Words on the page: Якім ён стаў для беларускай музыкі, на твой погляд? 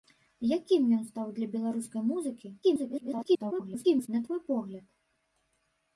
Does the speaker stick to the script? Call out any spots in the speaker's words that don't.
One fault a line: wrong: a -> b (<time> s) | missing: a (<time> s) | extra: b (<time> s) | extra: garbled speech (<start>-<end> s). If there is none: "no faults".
extra: garbled speech (2.6-4.1 s)